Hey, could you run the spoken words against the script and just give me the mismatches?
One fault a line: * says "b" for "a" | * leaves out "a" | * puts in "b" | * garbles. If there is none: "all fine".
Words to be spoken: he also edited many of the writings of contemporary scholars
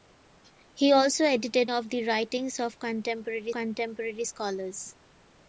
* leaves out "many"
* puts in "contemporary"